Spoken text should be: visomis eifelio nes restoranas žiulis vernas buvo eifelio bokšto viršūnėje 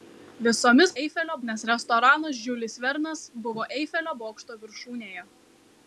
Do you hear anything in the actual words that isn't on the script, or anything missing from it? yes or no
no